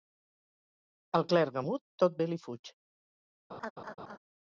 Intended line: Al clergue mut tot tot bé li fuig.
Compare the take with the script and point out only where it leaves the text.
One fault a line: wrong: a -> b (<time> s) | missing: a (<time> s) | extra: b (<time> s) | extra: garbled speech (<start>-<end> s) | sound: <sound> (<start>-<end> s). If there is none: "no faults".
missing: tot (2.2 s)
sound: laugh (3.5-4.2 s)